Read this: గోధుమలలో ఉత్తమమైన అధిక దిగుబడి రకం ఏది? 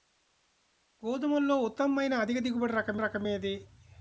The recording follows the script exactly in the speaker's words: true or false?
false